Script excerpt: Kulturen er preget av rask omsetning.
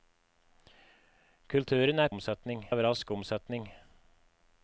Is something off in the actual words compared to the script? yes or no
yes